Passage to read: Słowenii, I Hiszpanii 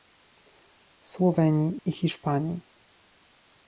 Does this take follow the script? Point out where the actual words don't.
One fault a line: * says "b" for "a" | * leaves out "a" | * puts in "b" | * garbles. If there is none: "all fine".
all fine